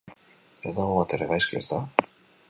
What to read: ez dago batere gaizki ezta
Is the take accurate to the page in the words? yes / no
yes